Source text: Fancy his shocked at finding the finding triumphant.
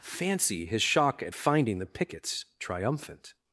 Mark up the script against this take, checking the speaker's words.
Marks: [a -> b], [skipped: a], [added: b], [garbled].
Fancy his [shocked -> shock] at finding the [finding -> pickets] triumphant.